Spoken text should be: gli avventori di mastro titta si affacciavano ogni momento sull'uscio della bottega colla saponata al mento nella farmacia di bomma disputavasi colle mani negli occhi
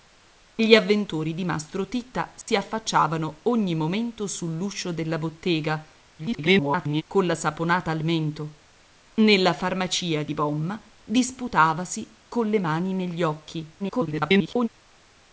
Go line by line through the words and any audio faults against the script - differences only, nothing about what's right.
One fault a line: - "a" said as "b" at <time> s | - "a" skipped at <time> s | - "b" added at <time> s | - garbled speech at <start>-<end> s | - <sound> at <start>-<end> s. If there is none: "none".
- dropout at 2.4-2.5 s
- garbled speech at 6.2-7.0 s
- garbled speech at 13.8-14.7 s